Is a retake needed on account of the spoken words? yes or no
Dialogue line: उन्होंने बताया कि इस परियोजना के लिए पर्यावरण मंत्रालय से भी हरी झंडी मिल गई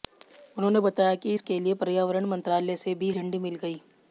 yes